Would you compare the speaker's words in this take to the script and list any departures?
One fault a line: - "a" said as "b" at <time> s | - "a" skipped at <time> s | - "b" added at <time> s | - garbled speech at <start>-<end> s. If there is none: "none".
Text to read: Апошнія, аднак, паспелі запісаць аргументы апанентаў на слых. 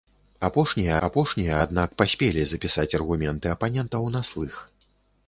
- "апошнія" added at 1.1 s